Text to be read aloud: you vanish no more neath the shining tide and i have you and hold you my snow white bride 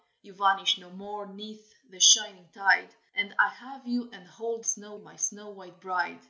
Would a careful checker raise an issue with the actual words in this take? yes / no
yes